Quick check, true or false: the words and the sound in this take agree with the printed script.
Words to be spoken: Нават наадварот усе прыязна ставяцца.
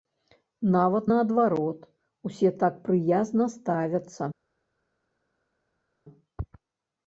false